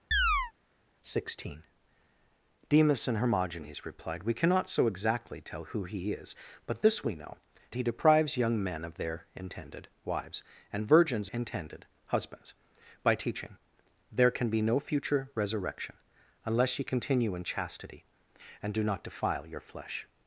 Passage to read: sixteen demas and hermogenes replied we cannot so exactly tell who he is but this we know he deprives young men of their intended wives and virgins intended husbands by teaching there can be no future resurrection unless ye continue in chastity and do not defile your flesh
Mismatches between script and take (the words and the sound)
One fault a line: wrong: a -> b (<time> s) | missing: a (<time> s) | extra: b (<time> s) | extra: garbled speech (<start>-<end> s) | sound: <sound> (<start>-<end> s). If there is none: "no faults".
sound: chirp (0.1-0.5 s)